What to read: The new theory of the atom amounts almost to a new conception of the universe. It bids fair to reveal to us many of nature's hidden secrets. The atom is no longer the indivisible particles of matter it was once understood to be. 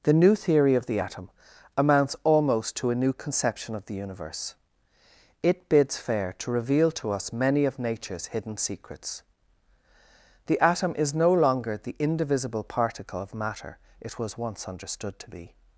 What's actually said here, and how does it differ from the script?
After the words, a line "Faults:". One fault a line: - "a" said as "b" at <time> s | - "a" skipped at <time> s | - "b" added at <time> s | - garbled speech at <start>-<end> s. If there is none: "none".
The new theory of the atom amounts almost to a new conception of the universe. It bids fair to reveal to us many of nature's hidden secrets. The atom is no longer the indivisible particle of matter it was once understood to be.
Faults:
- "particles" said as "particle" at 12.6 s